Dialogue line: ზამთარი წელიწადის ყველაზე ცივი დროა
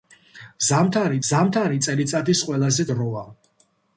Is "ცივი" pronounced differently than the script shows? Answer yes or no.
yes